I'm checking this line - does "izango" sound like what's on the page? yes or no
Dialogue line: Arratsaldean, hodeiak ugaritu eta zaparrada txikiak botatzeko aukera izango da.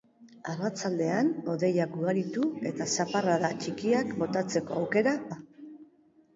no